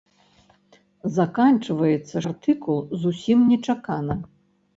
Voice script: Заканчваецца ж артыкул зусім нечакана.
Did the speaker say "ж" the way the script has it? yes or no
no